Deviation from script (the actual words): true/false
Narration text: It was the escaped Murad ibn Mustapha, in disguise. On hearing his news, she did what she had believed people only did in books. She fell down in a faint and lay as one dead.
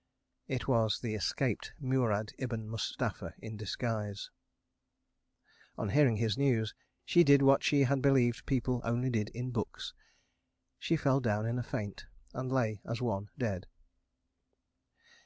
false